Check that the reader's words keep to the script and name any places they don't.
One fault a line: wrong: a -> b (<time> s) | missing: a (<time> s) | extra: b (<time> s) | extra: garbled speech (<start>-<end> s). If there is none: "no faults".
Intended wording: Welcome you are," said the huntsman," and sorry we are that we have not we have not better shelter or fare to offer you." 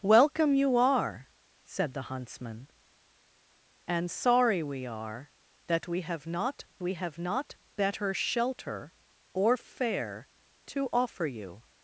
no faults